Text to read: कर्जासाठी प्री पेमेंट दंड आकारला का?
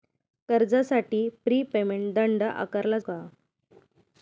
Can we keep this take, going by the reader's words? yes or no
yes